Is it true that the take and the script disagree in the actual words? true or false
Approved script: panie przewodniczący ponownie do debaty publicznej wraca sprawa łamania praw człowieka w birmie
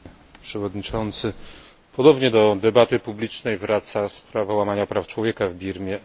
false